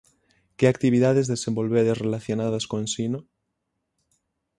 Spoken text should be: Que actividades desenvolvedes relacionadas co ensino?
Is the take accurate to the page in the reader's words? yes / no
yes